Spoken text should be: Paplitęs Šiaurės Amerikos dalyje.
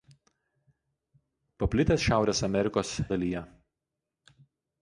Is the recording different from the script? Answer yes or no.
no